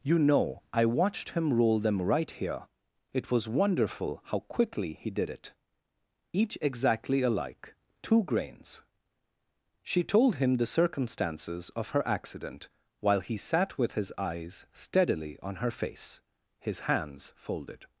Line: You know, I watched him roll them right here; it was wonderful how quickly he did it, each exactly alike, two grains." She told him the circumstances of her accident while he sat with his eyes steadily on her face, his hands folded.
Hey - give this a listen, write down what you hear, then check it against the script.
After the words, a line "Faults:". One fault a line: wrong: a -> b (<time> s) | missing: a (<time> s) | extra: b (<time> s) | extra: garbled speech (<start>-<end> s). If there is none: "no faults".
You know, I watched him roll them right here; it was wonderful how quickly he did it, each exactly alike, two grains." She told him the circumstances of her accident while he sat with his eyes steadily on her face, his hands folded.
Faults:
no faults